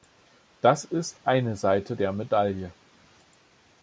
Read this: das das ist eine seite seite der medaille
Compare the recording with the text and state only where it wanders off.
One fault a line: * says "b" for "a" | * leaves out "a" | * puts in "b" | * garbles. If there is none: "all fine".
* leaves out "das"
* leaves out "seite"